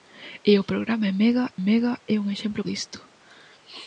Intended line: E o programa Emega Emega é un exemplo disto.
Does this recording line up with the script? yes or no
yes